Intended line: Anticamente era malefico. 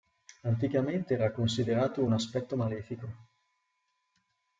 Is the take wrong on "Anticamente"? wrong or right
right